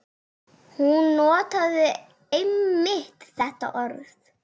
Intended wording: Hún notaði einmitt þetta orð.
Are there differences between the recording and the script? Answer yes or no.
no